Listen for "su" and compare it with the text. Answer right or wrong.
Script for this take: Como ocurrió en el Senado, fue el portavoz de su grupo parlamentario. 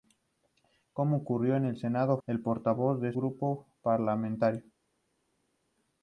wrong